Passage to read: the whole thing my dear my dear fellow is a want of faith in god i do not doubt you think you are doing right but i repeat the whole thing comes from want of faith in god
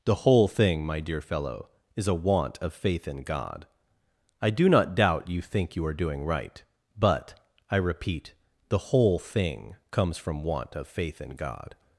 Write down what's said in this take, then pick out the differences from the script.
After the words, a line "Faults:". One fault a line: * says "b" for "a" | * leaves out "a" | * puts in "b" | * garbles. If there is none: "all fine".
the whole thing my dear fellow is a want of faith in god i do not doubt you think you are doing right but i repeat the whole thing comes from want of faith in god
Faults:
* leaves out "my dear"